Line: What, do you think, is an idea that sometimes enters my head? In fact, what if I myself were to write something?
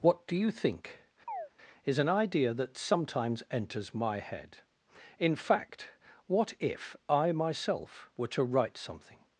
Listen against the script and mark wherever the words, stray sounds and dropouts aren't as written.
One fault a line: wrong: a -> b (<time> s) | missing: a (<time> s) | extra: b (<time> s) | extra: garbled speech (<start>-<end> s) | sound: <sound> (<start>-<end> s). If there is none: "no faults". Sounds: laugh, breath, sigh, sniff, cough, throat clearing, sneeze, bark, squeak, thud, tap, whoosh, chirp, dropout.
sound: chirp (1.3-1.5 s)